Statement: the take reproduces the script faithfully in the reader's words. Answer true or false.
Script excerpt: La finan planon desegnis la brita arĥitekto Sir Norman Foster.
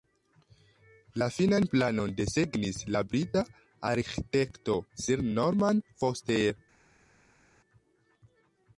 true